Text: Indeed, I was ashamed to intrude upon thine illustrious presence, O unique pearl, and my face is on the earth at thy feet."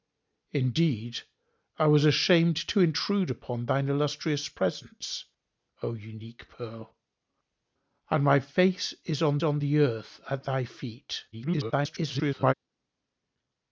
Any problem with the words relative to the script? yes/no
yes